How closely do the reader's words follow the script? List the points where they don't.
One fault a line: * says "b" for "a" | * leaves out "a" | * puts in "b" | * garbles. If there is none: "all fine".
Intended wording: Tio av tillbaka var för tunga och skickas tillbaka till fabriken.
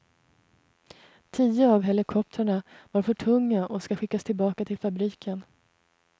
* says "helikoptrarna" for "tillbaka"
* puts in "ska"